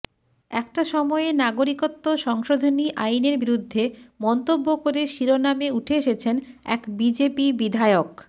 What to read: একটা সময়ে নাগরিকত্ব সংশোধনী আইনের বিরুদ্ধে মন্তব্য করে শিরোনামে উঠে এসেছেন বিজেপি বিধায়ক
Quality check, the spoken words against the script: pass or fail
fail